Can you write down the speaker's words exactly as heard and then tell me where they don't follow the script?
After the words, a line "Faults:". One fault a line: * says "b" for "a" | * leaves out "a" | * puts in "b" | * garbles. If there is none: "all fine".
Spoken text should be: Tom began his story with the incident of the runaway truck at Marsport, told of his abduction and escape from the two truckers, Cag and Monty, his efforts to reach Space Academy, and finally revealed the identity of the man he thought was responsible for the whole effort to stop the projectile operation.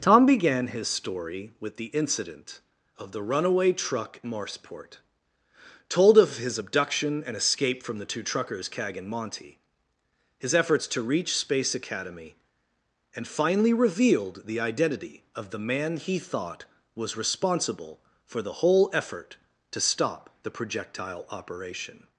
Tom began his story with the incident of the runaway truck Marsport, told of his abduction and escape from the two truckers, Cag and Monty, his efforts to reach Space Academy, and finally revealed the identity of the man he thought was responsible for the whole effort to stop the projectile operation.
Faults:
* leaves out "at"